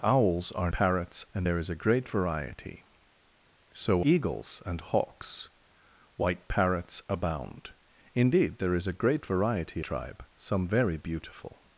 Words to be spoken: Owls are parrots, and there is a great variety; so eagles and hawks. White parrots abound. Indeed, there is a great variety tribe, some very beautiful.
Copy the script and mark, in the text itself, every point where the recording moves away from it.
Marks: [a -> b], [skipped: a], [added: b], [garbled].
Owls are parrots, and there is a great variety; so eagles and hawks. White parrots abound. Indeed, there is a great variety tribe, some very beautiful.